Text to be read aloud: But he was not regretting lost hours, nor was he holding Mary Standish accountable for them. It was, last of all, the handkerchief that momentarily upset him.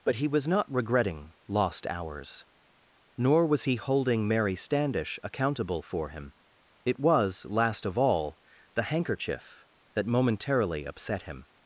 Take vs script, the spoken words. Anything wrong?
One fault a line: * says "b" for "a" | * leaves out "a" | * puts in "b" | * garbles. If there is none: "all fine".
* says "him" for "them"